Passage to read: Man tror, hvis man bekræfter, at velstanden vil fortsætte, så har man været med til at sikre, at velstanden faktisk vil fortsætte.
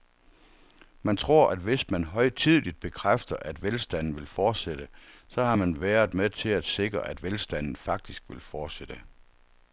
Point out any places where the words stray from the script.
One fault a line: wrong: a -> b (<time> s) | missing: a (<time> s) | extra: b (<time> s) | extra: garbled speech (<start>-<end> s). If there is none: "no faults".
extra: at (1.5 s)
extra: højtideligt (2.0 s)